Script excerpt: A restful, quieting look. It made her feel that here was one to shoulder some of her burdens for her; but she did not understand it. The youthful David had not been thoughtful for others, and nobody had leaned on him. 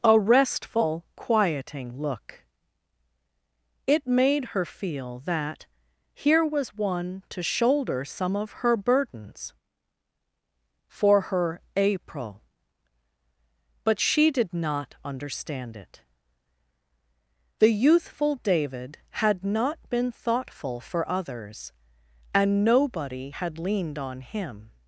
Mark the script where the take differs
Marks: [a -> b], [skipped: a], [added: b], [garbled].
A restful, quieting look. It made her feel that here was one to shoulder some of her burdens for her; [added: april] but she did not understand it. The youthful David had not been thoughtful for others, and nobody had leaned on him.